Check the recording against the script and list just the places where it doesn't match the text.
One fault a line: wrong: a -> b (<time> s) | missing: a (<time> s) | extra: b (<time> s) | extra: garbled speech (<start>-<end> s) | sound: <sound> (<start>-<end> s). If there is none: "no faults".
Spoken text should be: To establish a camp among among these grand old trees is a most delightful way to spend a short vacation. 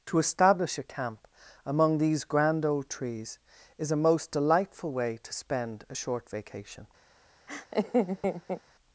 missing: among (2.0 s)
sound: laugh (7.5-8.6 s)